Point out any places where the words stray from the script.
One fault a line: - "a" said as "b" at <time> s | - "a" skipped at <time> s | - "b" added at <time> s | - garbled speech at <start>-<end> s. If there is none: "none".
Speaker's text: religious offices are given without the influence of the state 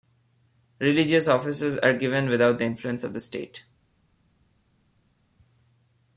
none